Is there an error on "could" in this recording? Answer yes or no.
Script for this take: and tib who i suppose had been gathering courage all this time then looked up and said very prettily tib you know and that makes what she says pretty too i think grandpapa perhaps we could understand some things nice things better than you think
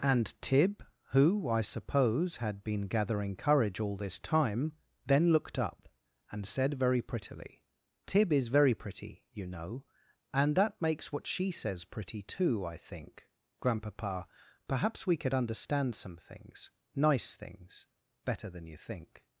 no